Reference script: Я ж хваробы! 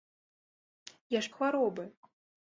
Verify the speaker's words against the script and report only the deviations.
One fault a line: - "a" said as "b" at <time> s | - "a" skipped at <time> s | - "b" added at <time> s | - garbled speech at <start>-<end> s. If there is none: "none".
none